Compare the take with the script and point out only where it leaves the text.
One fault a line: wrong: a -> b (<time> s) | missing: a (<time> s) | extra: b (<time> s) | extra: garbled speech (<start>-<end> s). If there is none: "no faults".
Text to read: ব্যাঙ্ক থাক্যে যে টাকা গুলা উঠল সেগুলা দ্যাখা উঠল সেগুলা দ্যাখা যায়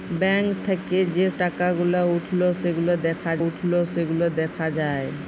no faults